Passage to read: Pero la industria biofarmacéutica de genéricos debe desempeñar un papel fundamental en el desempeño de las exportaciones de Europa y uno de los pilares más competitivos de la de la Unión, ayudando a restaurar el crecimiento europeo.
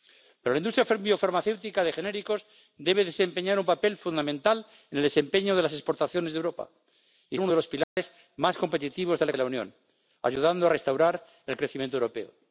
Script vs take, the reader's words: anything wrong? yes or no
no